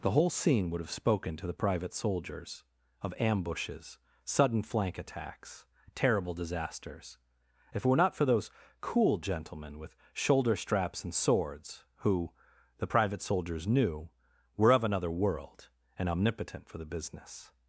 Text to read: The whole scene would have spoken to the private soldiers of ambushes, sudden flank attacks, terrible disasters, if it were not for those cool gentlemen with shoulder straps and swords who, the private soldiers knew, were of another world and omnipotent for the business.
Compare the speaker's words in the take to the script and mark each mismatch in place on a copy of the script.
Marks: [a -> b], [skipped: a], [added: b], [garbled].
The whole scene would have spoken to the private soldiers of ambushes, sudden flank attacks, terrible disasters, if it were not for those cool gentlemen with shoulder straps and swords who, the private soldiers knew, were of another world and omnipotent for the business.